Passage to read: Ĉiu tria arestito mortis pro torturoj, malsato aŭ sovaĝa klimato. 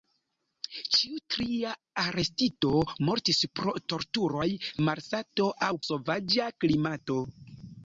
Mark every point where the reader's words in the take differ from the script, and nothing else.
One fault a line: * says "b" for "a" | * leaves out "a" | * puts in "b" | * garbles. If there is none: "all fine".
all fine